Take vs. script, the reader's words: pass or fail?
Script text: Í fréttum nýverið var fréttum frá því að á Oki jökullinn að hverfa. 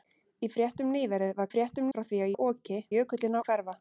pass